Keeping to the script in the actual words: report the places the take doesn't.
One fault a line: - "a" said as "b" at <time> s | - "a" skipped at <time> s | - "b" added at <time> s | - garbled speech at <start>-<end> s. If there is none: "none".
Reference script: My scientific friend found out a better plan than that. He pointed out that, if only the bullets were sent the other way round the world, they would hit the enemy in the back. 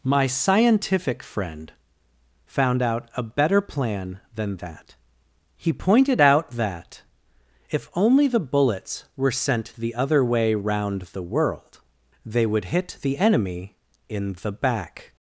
none